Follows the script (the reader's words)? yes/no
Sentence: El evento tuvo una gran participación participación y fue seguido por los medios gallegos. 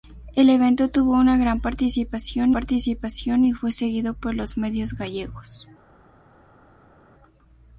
yes